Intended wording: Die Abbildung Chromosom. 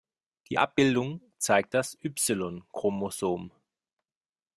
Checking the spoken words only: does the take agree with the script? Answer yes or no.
no